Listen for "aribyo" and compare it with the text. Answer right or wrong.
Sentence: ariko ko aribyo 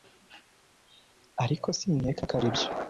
right